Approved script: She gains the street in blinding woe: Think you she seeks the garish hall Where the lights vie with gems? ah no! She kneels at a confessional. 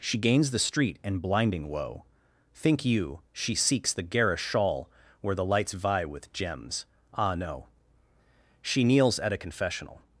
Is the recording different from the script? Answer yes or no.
yes